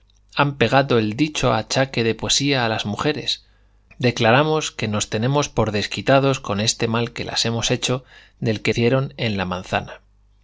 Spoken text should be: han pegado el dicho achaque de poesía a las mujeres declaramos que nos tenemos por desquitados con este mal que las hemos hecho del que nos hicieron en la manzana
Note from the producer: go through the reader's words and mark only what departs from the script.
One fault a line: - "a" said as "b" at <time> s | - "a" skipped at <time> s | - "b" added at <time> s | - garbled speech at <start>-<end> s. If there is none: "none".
- "nos" skipped at 8.7 s